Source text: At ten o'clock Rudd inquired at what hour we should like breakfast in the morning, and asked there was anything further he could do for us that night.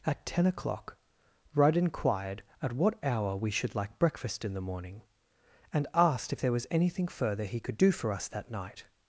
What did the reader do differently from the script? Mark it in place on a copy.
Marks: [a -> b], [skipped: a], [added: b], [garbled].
At ten o'clock Rudd inquired at what hour we should like breakfast in the morning, and asked [added: if] there was anything further he could do for us that night.